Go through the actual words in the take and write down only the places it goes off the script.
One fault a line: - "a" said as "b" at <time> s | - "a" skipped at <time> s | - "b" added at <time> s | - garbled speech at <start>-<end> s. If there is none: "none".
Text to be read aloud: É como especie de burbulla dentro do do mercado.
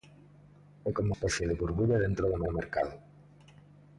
none